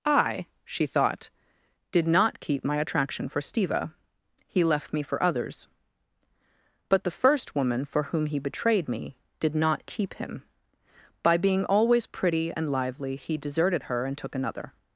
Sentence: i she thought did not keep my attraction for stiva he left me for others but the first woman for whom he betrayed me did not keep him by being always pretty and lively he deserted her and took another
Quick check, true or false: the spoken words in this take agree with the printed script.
true